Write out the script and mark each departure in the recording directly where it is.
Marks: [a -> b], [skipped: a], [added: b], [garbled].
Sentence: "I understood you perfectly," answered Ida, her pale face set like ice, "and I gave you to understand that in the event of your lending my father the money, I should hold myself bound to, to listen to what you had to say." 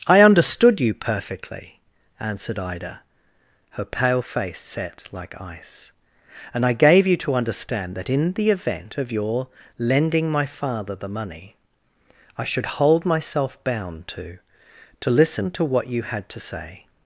"I understood you perfectly," answered Ida, her pale face set like ice, "and I gave you to understand that in the event of your lending my father the money, I should hold myself bound to, to listen to what you had to say."